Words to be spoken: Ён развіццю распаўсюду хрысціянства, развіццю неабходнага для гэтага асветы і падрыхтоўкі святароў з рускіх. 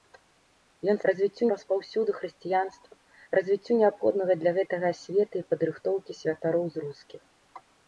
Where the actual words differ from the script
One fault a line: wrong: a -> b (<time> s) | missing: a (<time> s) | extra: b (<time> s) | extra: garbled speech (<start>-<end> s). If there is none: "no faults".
no faults